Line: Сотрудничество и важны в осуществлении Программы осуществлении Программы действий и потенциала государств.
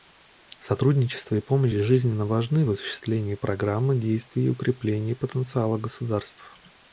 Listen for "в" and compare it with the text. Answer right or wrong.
right